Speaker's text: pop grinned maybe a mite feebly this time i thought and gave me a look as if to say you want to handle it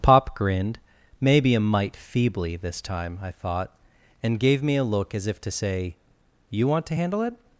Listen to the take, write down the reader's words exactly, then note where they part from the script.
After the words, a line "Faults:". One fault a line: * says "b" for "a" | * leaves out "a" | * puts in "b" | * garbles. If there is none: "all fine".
pop grinned maybe a mite feebly this time i thought and gave me a look as if to say you want to handle it
Faults:
all fine